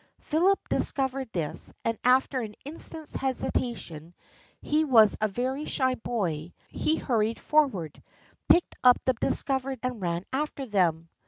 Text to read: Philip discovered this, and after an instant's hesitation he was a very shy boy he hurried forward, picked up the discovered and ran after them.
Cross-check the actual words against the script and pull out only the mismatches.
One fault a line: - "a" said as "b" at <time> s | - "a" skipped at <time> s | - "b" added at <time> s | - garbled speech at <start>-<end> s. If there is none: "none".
none